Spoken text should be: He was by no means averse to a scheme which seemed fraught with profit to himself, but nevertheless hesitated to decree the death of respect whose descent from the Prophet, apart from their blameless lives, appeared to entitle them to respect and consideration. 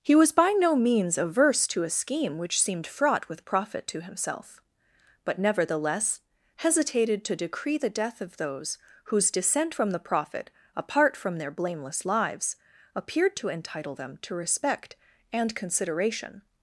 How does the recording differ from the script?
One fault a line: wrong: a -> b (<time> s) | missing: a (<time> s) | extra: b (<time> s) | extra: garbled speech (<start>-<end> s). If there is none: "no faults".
wrong: respect -> those (8.4 s)